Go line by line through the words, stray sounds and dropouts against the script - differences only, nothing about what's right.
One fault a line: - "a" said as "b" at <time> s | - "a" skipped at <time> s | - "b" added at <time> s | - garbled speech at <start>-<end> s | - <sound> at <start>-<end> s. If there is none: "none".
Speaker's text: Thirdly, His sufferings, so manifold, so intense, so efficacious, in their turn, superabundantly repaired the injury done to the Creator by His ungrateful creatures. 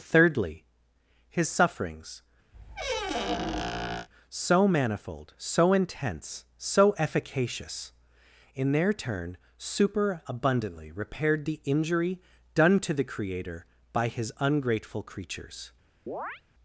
- squeak at 2.5-4.1 s
- chirp at 16.1-16.4 s